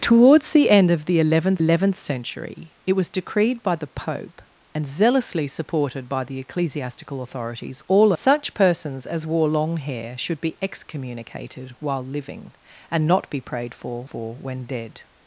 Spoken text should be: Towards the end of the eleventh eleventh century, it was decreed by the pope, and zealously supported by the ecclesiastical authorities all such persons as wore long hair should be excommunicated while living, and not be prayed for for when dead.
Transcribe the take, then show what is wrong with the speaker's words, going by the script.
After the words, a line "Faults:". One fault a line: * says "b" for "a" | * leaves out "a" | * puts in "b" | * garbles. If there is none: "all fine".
Towards the end of the eleventh eleventh century, it was decreed by the pope, and zealously supported by the ecclesiastical authorities all such persons as wore long hair should be excommunicated while living, and not be prayed for for when dead.
Faults:
all fine